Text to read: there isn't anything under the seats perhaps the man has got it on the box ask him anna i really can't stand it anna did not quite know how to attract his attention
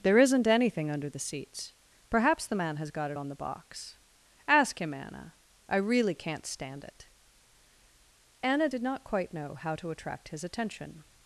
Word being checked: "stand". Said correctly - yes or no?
yes